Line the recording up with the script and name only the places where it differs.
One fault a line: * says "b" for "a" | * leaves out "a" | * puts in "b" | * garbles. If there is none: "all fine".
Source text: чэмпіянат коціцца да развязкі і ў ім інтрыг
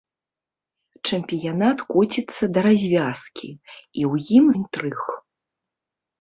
all fine